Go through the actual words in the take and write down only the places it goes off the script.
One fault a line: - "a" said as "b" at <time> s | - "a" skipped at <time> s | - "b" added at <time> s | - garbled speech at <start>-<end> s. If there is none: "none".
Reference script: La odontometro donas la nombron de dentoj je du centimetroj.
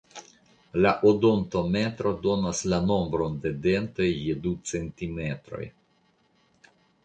none